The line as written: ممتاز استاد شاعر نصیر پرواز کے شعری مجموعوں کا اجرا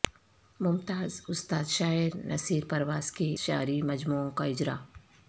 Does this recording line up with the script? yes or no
yes